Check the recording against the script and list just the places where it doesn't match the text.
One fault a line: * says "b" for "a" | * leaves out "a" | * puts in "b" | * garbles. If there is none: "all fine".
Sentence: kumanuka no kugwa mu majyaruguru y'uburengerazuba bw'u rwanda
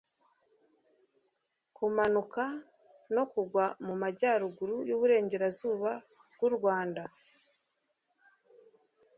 all fine